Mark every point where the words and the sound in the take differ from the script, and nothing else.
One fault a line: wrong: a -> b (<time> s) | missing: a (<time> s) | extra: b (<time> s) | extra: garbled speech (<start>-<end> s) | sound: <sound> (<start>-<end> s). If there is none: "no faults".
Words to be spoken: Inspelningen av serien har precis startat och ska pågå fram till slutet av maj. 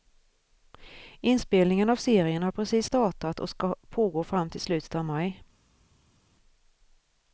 no faults